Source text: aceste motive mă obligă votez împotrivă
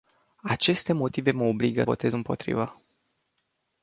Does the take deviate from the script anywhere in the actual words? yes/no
no